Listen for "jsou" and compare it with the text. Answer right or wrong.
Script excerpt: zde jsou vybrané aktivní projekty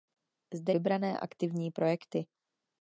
wrong